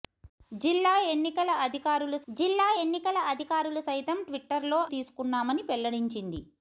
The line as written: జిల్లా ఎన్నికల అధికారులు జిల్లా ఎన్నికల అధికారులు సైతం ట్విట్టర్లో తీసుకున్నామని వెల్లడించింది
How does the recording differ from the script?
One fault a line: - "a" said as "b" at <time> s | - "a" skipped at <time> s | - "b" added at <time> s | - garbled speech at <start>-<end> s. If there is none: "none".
none